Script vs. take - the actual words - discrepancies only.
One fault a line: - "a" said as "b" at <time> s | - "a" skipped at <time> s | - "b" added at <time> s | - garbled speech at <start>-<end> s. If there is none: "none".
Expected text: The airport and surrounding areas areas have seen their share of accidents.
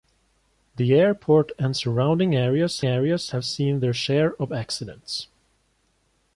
none